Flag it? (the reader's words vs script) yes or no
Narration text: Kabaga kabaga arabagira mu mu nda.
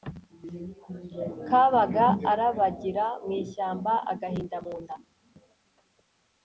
yes